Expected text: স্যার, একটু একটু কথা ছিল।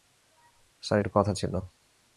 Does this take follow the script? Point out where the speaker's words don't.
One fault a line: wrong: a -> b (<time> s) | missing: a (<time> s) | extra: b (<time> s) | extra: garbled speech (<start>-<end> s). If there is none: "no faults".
missing: একটু (1.1 s)